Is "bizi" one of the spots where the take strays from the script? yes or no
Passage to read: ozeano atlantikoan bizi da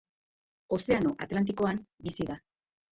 no